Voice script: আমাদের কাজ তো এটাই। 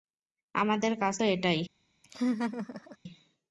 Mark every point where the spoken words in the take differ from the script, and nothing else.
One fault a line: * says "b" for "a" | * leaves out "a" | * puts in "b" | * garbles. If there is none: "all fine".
all fine